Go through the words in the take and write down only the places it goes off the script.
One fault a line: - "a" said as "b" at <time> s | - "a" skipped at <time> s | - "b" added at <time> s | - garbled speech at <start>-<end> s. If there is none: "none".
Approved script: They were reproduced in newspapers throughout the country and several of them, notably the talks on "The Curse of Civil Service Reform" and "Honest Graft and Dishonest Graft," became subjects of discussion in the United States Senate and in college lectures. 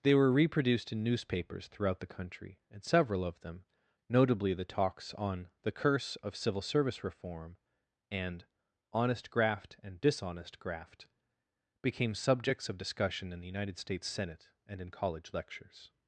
none